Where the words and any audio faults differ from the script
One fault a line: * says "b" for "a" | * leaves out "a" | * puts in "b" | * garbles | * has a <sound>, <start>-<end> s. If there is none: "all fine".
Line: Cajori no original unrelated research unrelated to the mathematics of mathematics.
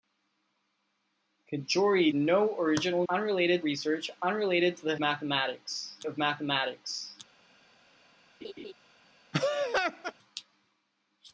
* has a laugh, 8.4-8.7 s
* has a laugh, 9.3-10.1 s